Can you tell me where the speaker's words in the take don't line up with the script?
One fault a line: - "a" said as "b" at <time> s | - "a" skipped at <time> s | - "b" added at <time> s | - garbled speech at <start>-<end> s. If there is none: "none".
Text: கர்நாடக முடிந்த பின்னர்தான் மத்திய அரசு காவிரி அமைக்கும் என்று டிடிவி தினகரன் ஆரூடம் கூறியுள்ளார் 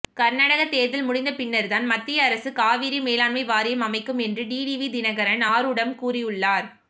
- "தேர்தல்" added at 0.7 s
- "மேலாண்மை வாரியம்" added at 3.0 s